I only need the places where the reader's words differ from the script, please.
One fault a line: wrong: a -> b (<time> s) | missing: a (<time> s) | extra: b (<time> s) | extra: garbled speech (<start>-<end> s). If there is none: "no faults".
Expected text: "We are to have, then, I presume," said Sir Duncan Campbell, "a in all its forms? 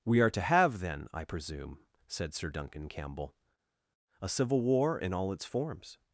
extra: civil war (4.3 s)